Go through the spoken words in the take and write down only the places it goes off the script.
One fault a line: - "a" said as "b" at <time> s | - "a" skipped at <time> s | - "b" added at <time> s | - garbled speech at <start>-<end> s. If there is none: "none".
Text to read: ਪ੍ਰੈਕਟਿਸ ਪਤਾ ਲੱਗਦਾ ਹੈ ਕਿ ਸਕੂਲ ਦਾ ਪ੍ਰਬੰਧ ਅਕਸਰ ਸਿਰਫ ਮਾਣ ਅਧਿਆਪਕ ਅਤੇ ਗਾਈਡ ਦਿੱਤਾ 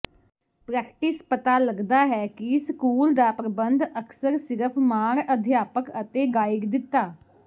none